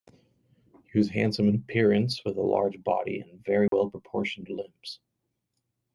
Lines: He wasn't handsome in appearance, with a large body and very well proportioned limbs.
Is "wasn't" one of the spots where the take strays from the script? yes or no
yes